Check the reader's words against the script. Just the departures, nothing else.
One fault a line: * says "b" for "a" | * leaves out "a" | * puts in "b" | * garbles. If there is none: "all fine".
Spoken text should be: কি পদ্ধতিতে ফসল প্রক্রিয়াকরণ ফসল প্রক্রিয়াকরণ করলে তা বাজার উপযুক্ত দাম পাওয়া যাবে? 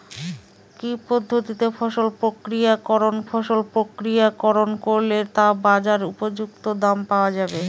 all fine